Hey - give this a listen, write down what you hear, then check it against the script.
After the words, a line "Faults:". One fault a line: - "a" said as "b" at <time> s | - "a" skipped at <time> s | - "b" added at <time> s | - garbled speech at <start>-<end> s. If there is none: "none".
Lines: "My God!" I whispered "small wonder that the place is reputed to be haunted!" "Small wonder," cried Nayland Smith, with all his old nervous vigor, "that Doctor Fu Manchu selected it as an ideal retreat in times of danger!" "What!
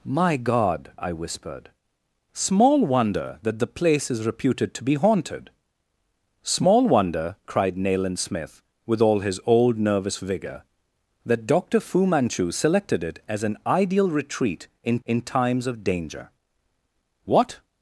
"My God!" I whispered "small wonder that the place is reputed to be haunted!" "Small wonder," cried Nayland Smith, with all his old nervous vigor, "that Doctor Fu Manchu selected it as an ideal retreat in in times of danger!" "What!
Faults:
- "in" added at 15.1 s